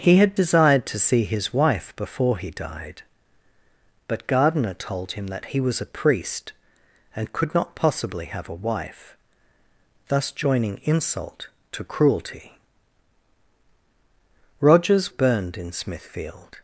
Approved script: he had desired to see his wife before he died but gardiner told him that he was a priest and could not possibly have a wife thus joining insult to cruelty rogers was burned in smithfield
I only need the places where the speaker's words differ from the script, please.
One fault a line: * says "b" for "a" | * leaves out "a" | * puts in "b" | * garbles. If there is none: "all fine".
* leaves out "was"